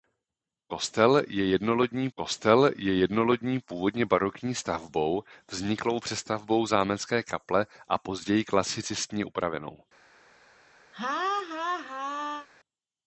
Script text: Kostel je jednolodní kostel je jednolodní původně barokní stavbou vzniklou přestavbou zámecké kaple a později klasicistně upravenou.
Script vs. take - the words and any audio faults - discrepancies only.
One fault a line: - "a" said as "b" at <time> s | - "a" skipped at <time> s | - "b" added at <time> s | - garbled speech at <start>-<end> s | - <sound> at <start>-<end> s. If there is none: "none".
- laugh at 10.9-12.5 s